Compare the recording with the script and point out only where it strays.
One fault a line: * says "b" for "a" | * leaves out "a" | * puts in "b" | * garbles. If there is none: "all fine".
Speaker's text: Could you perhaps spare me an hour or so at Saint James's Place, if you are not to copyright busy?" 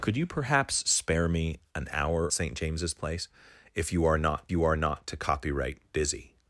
* leaves out "or so at"
* puts in "you are not"